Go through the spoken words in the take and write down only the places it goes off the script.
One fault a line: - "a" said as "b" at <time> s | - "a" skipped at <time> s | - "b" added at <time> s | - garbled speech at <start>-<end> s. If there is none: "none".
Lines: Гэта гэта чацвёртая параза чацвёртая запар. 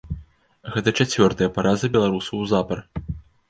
- "гэта" skipped at 0.9 s
- "чацвёртая" said as "беларусаў" at 2.0 s